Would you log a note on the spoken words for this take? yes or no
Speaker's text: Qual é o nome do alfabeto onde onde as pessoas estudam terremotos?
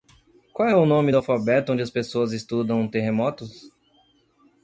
yes